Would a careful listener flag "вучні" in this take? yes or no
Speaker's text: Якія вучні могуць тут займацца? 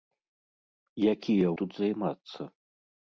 yes